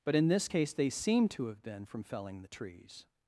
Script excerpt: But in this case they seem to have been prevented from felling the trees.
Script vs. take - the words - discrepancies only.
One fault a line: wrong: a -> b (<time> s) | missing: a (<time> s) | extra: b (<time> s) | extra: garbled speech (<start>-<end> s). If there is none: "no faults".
missing: prevented (1.8 s)